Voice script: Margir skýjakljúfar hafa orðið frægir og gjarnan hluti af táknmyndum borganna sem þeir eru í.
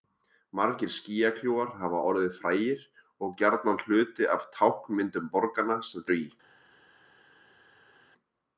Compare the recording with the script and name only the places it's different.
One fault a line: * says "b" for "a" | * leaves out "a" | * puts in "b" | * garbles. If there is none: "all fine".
* leaves out "þeir"